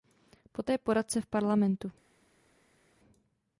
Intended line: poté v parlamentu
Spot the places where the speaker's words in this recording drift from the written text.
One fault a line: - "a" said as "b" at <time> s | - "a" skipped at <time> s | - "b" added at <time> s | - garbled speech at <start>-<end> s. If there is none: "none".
- "poradce" added at 0.8 s